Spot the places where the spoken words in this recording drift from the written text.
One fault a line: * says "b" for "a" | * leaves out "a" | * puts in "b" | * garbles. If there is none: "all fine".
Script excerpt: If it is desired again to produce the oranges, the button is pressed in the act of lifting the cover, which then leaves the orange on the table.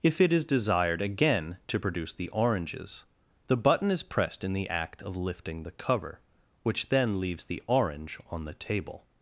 all fine